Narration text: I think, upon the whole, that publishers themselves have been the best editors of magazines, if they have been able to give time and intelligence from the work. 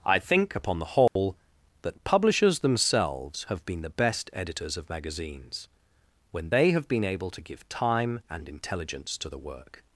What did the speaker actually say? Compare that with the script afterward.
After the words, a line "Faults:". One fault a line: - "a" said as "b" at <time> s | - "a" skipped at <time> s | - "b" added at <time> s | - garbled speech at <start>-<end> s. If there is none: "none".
I think, upon the whole, that publishers themselves have been the best editors of magazines, when they have been able to give time and intelligence to the work.
Faults:
- "if" said as "when" at 6.3 s
- "from" said as "to" at 9.2 s